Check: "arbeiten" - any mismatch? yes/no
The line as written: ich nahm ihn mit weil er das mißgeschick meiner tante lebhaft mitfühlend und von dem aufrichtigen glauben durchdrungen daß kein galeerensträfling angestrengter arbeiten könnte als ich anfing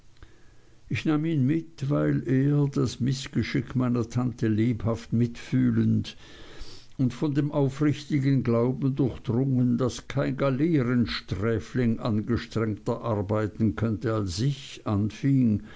no